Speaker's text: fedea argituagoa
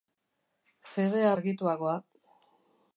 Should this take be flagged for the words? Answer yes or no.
no